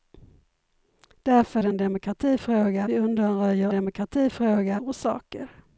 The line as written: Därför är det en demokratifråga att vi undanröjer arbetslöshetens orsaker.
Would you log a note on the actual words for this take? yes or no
yes